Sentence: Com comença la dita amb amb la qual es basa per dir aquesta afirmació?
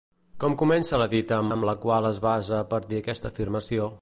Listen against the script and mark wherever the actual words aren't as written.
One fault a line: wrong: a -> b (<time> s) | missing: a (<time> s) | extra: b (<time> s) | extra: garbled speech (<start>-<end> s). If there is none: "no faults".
no faults